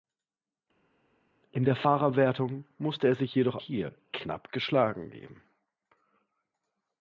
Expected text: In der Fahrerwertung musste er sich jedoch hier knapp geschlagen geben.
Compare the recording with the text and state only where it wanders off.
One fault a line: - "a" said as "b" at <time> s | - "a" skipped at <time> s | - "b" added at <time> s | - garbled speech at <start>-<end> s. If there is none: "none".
none